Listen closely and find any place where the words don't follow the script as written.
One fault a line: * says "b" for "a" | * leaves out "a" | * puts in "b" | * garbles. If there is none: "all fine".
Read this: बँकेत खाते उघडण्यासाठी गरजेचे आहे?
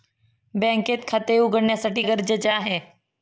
all fine